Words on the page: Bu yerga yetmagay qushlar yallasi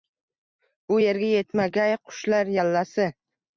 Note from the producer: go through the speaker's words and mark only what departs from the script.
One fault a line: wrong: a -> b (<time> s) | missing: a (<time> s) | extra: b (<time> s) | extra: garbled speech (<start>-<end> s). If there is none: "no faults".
no faults